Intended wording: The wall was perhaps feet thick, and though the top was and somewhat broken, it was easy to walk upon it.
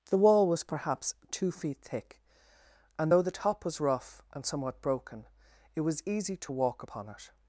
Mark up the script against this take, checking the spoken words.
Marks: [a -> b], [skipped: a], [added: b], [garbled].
The wall was perhaps [added: two] feet thick, and though the top was [added: rough] and somewhat broken, it was easy to walk upon it.